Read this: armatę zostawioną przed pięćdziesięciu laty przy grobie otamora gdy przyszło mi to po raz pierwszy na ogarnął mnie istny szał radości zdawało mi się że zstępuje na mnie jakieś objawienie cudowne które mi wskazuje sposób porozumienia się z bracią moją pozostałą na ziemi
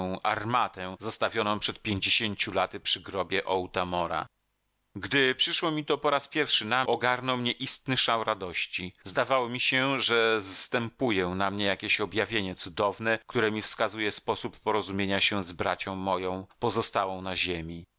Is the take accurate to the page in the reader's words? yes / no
yes